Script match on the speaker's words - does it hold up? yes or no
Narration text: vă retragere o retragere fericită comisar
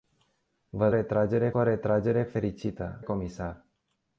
yes